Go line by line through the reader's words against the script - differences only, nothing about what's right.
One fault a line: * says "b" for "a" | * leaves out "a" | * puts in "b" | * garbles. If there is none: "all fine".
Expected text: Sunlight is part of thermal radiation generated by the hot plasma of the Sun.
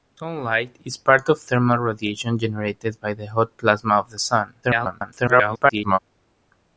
* garbles